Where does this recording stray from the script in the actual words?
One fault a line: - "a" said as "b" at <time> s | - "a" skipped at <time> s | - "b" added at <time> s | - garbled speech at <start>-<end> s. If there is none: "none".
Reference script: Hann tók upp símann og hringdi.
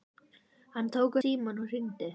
- "upp" skipped at 1.1 s